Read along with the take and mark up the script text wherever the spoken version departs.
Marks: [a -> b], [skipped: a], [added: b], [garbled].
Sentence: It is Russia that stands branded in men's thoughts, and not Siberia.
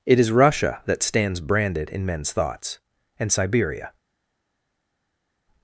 It is Russia that stands branded in men's thoughts, and [skipped: not] Siberia.